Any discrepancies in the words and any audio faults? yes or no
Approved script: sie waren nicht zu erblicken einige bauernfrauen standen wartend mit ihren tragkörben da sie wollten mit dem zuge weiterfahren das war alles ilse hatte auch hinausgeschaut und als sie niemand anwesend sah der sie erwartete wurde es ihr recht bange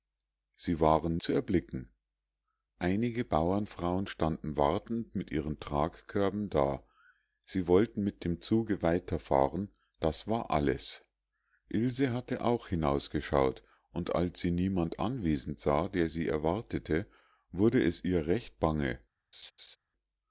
yes